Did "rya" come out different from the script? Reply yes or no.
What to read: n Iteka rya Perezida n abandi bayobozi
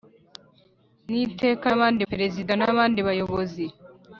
yes